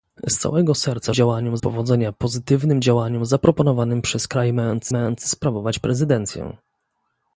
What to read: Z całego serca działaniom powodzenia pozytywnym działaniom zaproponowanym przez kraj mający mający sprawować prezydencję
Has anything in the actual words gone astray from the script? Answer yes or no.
no